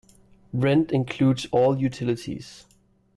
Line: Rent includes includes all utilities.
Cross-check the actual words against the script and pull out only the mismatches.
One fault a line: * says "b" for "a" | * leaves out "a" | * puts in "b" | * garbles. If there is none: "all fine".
* leaves out "includes"